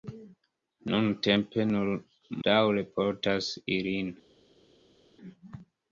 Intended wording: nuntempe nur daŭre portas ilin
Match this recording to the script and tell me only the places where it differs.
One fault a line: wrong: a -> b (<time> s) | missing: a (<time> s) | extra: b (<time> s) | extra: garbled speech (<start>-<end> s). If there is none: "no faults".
no faults